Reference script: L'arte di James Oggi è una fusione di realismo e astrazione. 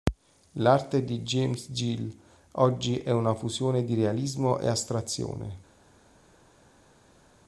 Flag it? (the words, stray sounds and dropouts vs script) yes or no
yes